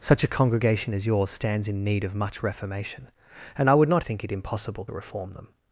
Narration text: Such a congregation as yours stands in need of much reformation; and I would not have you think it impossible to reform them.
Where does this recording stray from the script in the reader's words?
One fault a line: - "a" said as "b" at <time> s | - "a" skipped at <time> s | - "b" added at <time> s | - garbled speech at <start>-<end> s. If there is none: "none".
- "have you" skipped at 4.0 s
- "to" skipped at 4.8 s